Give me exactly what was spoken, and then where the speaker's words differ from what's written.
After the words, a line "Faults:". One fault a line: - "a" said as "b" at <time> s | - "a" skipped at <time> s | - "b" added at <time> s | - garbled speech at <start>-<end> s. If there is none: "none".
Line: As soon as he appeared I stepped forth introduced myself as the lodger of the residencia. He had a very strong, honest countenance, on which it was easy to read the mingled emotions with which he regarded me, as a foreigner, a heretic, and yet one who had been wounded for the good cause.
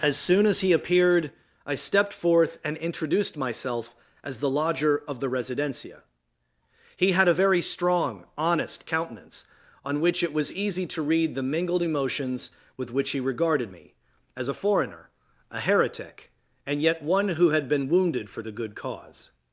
As soon as he appeared I stepped forth and introduced myself as the lodger of the residencia. He had a very strong, honest countenance, on which it was easy to read the mingled emotions with which he regarded me, as a foreigner, a heretic, and yet one who had been wounded for the good cause.
Faults:
- "and" added at 2.6 s